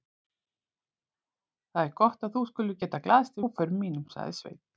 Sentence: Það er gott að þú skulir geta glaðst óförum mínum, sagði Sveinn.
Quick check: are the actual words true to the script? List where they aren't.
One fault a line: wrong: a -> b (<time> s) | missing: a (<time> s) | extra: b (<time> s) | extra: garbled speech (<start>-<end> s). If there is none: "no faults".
no faults